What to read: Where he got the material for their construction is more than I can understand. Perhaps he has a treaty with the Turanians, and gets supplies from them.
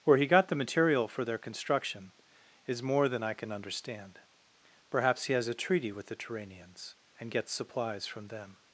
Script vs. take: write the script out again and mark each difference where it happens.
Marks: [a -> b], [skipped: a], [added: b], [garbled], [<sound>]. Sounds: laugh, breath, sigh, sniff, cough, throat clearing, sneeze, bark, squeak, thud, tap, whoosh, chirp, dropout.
Where he got the material for their construction is more than I can understand. Perhaps he has a treaty with the Turanians, and gets supplies from them.